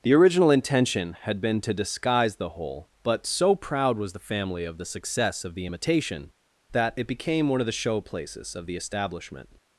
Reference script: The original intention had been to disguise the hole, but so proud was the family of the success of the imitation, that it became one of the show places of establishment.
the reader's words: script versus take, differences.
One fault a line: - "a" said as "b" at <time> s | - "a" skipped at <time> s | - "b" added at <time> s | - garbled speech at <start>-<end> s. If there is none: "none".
- "the" added at 8.7 s